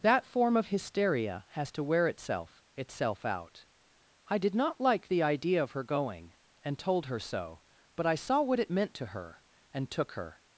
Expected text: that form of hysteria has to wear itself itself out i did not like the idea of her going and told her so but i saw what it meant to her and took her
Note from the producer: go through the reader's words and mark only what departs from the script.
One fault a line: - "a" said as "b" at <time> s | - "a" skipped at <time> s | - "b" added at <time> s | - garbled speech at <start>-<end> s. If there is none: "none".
none